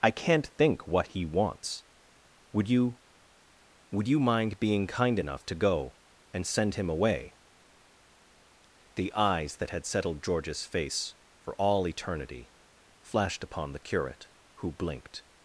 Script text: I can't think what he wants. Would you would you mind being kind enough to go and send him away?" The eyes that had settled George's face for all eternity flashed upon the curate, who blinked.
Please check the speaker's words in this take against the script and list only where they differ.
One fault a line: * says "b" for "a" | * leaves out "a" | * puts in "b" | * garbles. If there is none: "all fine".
all fine